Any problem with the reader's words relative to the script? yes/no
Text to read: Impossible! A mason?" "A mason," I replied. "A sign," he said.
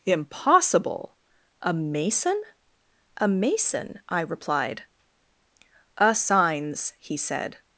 yes